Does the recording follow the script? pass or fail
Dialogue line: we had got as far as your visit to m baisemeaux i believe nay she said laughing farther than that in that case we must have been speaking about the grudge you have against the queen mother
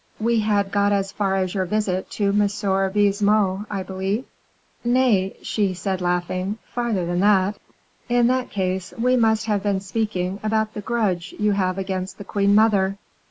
pass